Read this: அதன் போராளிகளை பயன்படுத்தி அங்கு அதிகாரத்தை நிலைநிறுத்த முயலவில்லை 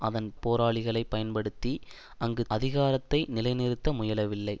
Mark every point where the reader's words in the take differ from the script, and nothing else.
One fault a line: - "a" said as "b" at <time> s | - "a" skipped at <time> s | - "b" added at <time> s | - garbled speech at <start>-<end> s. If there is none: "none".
none